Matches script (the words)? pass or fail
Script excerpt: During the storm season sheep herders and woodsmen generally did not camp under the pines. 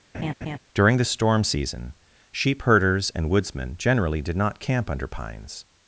fail